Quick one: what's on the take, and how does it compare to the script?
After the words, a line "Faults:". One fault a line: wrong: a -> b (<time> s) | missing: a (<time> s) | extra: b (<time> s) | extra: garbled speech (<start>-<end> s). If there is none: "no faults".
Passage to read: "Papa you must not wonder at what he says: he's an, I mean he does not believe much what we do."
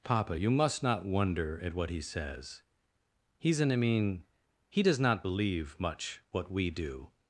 "Papa you must not wonder at what he says: he's an, I mean he does not believe much what we do."
Faults:
no faults